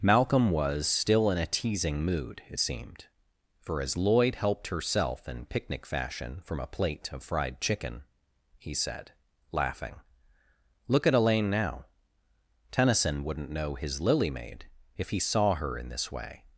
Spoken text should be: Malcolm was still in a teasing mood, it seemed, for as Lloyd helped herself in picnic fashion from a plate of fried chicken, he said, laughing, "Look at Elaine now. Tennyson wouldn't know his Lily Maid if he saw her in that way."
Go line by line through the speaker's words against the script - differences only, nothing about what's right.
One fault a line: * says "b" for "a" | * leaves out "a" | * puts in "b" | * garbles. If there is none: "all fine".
* says "this" for "that"